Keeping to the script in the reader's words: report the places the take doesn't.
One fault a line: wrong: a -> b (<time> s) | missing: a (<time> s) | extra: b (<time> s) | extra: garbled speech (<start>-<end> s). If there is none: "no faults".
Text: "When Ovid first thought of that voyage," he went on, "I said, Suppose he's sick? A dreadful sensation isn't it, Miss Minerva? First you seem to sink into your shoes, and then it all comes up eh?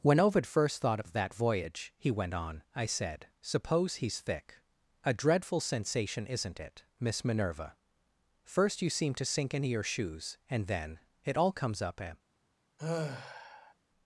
wrong: sick -> thick (4.2 s)